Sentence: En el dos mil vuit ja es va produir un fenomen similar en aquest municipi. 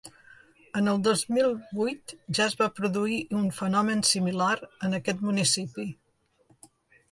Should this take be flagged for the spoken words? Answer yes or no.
no